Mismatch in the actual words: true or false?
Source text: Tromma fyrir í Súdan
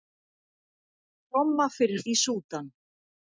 false